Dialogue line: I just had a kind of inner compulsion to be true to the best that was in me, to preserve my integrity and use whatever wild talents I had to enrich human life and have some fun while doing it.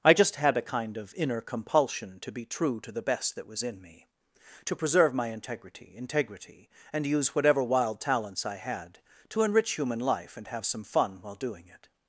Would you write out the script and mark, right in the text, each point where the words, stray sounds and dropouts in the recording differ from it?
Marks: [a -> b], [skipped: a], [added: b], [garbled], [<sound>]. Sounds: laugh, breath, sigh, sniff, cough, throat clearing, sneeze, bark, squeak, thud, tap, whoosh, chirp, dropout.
I just had a kind of inner compulsion to be true to the best that was in me, to preserve my integrity [added: integrity] and use whatever wild talents I had to enrich human life and have some fun while doing it.